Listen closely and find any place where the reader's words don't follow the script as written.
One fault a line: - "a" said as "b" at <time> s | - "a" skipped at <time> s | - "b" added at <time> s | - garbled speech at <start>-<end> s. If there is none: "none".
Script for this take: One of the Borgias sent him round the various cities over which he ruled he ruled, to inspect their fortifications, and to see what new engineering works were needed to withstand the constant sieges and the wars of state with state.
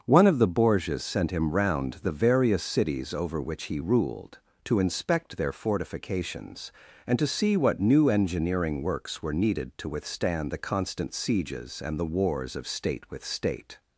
- "he ruled" skipped at 4.4 s